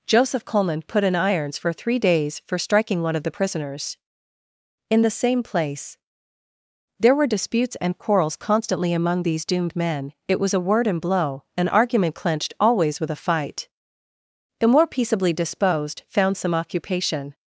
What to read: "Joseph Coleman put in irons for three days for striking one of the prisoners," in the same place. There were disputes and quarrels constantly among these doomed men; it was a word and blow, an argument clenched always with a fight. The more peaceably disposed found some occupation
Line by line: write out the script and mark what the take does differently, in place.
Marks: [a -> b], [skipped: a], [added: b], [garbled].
"Joseph Coleman put in irons for three days for striking one of the prisoners," in the same place. There were disputes and quarrels constantly among these doomed men; it was a word and blow, an argument clenched always with a fight. The more peaceably disposed found some occupation